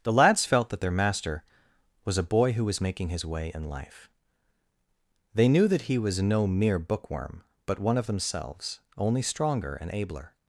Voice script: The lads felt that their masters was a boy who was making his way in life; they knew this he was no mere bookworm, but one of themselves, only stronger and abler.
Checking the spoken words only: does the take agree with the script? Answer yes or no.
no